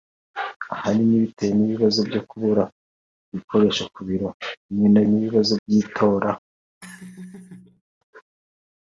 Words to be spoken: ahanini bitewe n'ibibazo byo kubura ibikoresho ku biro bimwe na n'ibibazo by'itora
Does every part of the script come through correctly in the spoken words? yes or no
yes